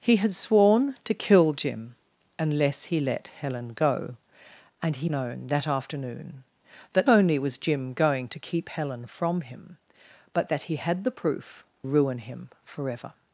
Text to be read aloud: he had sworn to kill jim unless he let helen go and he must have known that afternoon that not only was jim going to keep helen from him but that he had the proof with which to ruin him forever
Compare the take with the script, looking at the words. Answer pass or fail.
fail